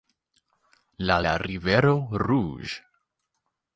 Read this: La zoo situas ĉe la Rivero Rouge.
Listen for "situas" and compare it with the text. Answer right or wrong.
wrong